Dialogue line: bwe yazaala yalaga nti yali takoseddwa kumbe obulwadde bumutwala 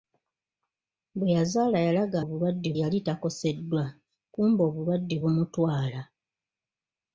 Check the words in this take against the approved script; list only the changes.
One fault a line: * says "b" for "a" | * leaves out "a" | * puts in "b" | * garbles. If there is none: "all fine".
* says "obulwadde" for "nti"